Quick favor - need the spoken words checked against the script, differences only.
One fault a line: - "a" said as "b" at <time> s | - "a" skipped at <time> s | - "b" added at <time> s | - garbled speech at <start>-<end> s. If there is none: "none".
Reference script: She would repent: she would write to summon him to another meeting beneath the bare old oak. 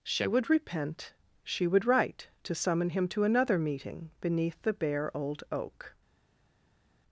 none